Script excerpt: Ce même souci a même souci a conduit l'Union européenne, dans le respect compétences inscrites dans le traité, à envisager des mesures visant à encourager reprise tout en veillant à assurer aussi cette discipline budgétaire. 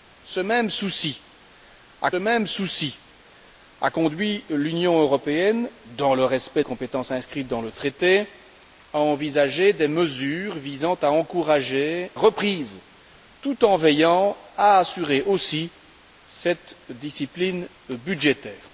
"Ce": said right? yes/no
yes